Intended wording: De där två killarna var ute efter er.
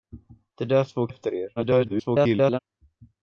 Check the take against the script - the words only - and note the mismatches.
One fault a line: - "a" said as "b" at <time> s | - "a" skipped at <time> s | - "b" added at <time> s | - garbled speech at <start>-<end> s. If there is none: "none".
- "killarna var ute" skipped at 1.1 s
- garbled speech at 1.6-2.6 s